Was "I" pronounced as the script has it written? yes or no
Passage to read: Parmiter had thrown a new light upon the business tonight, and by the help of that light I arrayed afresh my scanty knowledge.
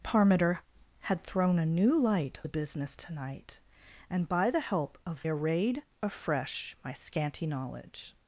no